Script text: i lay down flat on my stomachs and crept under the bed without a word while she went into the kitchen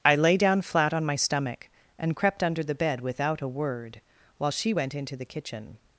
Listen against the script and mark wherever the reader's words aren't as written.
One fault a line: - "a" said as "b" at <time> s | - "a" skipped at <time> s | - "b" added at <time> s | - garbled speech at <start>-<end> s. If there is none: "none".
- "stomachs" said as "stomach" at 1.1 s